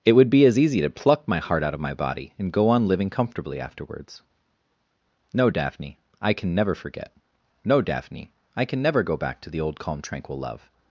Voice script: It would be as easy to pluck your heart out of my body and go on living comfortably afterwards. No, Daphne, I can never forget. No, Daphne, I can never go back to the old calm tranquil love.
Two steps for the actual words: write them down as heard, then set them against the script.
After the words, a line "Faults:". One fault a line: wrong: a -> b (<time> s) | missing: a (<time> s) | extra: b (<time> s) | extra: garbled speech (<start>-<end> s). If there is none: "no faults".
It would be as easy to pluck my heart out of my body and go on living comfortably afterwards. No, Daphne, I can never forget. No, Daphne, I can never go back to the old calm tranquil love.
Faults:
wrong: your -> my (1.3 s)